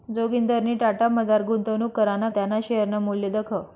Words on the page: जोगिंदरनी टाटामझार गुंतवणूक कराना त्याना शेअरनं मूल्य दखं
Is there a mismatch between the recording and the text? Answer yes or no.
no